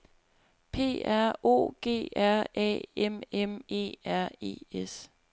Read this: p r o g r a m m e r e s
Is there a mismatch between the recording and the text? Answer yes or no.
no